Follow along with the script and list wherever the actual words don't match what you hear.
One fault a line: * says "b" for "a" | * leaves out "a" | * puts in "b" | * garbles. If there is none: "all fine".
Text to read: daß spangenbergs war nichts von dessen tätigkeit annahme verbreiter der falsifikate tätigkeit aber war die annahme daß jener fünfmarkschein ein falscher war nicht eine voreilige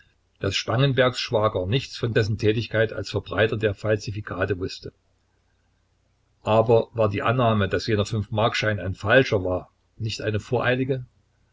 * says "schwager" for "war"
* says "als" for "annahme"
* says "wußte" for "tätigkeit"